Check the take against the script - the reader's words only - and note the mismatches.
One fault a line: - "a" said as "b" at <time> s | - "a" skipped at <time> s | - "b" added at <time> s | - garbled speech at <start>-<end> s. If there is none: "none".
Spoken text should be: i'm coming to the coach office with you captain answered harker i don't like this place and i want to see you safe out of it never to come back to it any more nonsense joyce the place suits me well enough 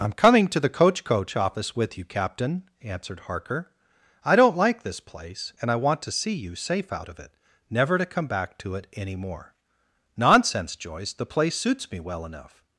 - "coach" added at 1.0 s